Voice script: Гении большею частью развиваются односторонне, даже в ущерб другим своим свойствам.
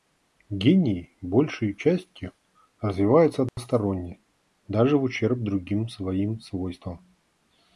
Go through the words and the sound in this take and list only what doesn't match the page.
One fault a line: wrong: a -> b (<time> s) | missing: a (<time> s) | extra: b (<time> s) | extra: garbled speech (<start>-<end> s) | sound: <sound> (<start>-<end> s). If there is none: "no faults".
sound: dropout (3.5-3.6 s)